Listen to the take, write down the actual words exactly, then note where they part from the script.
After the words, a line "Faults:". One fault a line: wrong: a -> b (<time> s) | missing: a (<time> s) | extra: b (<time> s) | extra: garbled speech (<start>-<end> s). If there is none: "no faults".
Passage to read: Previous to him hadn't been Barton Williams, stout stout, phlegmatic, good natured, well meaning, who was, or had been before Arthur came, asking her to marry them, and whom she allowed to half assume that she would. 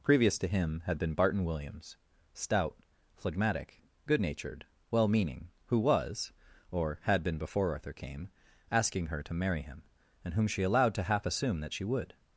Previous to him had been Barton Williams, stout, phlegmatic, good natured, well meaning, who was, or had been before Arthur came, asking her to marry him, and whom she allowed to half assume that she would.
Faults:
wrong: hadn't -> had (0.8 s)
missing: stout (2.8 s)
wrong: them -> him (9.6 s)